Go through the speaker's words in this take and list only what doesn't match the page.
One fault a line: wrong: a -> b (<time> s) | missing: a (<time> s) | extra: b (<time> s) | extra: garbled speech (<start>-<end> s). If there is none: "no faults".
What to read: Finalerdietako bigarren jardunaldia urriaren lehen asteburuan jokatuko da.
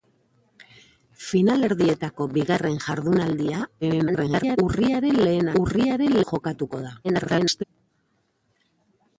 extra: garbled speech (3.8-4.6 s)
wrong: asteburuan -> urriaren (5.6 s)
extra: garbled speech (7.0-7.6 s)